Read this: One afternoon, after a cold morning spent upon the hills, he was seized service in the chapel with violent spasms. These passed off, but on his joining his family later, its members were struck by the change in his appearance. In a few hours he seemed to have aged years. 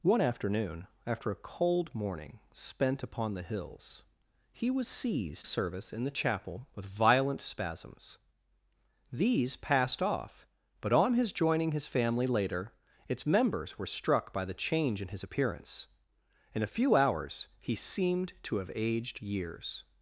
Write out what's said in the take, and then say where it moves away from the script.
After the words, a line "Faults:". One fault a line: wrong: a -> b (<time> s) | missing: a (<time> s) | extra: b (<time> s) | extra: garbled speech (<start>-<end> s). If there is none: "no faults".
One afternoon, after a cold morning spent upon the hills, he was seized service in the chapel with violent spasms. These passed off, but on his joining his family later, its members were struck by the change in his appearance. In a few hours he seemed to have aged years.
Faults:
no faults